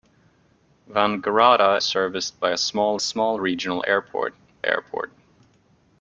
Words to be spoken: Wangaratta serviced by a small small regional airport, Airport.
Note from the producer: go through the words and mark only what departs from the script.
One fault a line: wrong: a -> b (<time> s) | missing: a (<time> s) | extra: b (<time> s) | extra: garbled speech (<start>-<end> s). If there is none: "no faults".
no faults